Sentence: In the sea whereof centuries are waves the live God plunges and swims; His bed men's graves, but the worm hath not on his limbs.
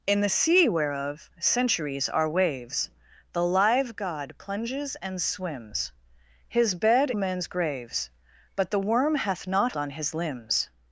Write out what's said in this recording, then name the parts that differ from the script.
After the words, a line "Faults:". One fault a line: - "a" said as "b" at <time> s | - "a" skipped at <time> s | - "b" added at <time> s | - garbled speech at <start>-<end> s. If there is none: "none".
In the sea whereof centuries are waves the live God plunges and swims; His bed men's graves, but the worm hath not on his limbs.
Faults:
none